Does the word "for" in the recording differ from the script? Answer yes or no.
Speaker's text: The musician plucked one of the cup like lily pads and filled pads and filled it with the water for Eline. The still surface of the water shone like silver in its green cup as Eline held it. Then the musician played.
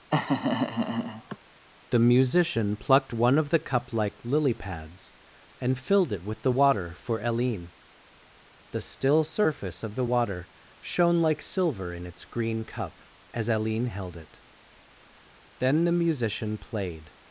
no